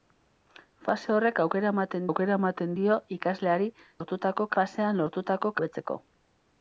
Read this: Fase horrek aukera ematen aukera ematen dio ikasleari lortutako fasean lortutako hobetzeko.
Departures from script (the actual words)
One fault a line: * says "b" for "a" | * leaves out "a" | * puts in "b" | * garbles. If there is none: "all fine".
all fine